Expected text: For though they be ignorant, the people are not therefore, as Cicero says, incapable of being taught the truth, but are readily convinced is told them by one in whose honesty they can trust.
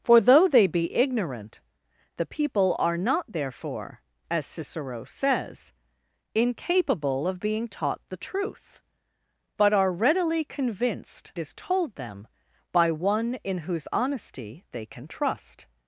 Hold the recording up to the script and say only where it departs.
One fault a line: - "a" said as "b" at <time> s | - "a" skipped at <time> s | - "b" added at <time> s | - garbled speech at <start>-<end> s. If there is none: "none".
none